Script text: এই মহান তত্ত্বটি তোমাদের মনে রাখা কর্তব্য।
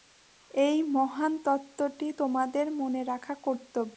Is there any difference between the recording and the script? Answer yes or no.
no